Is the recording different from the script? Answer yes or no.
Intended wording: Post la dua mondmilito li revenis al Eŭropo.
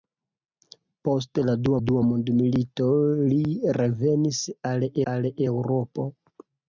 yes